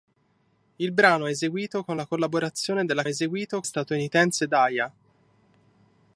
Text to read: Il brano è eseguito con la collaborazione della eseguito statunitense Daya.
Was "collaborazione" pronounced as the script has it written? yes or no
yes